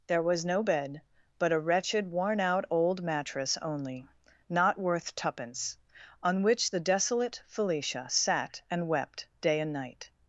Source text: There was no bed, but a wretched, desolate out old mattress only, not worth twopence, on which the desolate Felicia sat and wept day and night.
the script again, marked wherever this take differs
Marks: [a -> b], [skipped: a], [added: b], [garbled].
There was no bed, but a wretched, [desolate -> worn] out old mattress only, not worth twopence, on which the desolate Felicia sat and wept day and night.